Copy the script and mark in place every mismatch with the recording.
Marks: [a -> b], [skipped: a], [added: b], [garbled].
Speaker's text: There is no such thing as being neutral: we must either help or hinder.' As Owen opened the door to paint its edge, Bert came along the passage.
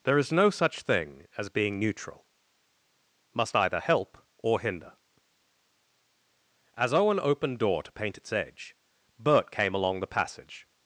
There is no such thing as being neutral: [skipped: we] must either help or hinder.' As Owen opened [skipped: the] door to paint its edge, Bert came along the passage.